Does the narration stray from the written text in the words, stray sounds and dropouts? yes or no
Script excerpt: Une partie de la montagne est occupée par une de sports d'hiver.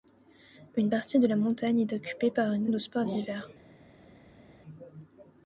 no